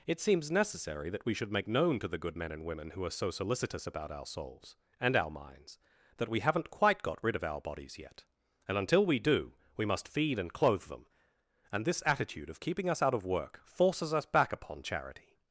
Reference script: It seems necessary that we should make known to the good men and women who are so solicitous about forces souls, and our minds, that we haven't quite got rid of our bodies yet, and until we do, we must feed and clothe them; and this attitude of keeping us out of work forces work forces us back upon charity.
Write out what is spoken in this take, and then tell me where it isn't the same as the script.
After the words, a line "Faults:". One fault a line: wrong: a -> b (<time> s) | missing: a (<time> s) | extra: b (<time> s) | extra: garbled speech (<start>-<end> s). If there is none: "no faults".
It seems necessary that we should make known to the good men and women who are so solicitous about our souls, and our minds, that we haven't quite got rid of our bodies yet, and until we do, we must feed and clothe them; and this attitude of keeping us out of work forces us back upon charity.
Faults:
wrong: forces -> our (4.1 s)
missing: work forces (14.1 s)